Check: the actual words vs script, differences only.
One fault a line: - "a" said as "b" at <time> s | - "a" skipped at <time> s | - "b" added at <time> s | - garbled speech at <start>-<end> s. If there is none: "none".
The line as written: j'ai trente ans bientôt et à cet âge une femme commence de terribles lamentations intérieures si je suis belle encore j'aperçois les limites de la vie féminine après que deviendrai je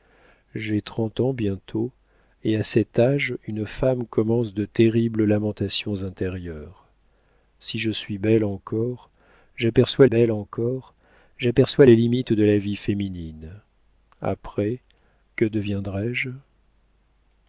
- "belle encore j'aperçois" added at 10.1 s